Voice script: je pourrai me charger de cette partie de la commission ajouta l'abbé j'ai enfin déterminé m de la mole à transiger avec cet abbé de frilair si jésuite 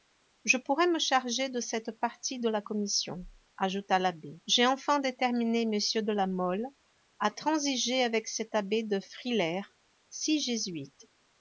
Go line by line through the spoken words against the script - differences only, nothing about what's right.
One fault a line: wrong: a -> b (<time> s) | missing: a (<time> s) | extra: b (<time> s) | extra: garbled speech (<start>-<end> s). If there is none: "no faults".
no faults